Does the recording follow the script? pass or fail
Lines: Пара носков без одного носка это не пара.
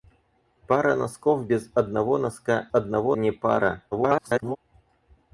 fail